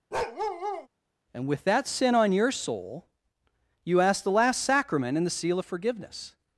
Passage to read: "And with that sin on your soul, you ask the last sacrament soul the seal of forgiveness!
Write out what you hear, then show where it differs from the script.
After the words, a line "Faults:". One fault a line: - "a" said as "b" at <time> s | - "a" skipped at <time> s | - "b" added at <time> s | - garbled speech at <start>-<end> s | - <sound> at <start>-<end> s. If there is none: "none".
"And with that sin on your soul, you ask the last sacrament and the seal of forgiveness!
Faults:
- bark at 0.1-0.9 s
- "soul" said as "and" at 5.2 s